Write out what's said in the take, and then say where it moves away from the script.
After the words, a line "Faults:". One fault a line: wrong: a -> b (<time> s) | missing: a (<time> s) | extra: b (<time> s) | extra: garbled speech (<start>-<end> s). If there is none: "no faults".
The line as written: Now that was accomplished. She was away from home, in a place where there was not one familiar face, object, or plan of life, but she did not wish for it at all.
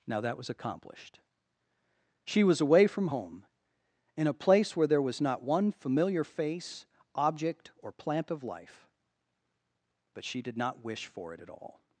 Now that was accomplished. She was away from home, in a place where there was not one familiar face, object, or plant of life, but she did not wish for it at all.
Faults:
wrong: plan -> plant (7.9 s)